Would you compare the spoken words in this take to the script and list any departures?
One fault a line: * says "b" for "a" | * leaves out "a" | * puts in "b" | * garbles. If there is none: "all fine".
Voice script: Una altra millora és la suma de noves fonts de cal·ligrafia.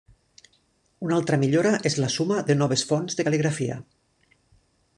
all fine